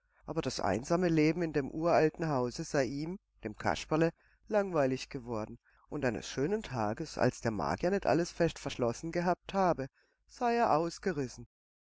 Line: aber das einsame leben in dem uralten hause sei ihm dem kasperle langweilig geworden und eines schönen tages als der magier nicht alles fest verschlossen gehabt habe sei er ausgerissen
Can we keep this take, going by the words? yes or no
yes